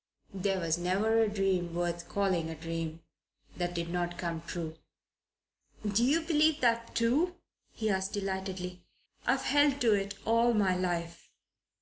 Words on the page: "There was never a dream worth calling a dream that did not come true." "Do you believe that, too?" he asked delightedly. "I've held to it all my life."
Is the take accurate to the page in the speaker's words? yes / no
yes